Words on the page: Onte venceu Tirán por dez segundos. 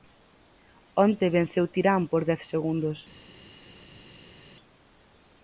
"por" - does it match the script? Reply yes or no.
yes